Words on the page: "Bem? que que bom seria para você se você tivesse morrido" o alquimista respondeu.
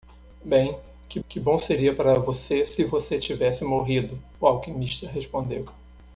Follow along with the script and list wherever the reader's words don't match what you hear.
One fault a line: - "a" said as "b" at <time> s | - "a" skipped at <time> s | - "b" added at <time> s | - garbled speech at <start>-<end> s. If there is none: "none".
none